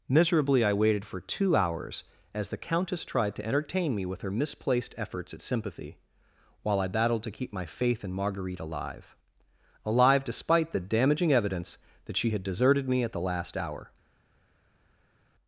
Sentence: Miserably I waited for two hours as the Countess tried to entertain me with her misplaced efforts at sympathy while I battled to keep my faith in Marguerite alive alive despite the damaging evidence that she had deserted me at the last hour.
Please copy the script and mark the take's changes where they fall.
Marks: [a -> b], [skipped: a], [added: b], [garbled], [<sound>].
Miserably I waited for two hours as the Countess tried to entertain me with her misplaced efforts at sympathy while I battled to keep my faith in Marguerite alive alive despite the damaging evidence that she had deserted me at the last hour.